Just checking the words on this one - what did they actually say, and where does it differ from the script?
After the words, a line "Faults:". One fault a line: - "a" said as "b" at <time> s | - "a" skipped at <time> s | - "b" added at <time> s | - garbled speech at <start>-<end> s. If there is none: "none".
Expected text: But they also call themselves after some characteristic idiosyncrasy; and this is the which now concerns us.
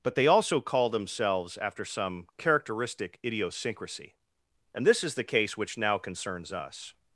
But they also call themselves after some characteristic idiosyncrasy; and this is the case which now concerns us.
Faults:
- "case" added at 5.2 s